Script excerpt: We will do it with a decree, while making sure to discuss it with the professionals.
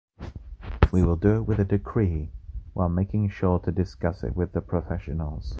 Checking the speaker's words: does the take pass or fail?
pass